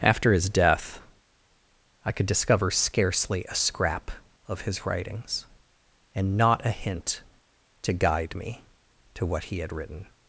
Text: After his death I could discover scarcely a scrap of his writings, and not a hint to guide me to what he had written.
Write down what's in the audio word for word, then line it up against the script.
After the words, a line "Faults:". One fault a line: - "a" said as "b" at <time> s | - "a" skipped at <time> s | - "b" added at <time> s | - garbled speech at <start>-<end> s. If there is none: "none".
After his death I could discover scarcely a scrap of his writings, and not a hint to guide me to what he had written.
Faults:
none